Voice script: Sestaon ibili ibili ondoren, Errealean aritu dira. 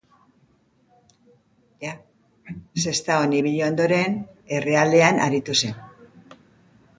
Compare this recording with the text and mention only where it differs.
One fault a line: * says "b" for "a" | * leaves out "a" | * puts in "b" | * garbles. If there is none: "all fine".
* leaves out "ibili"
* says "zen" for "dira"